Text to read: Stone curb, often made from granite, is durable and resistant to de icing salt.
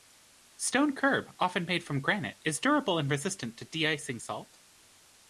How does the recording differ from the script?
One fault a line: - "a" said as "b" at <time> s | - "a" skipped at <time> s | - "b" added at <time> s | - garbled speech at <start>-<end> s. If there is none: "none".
none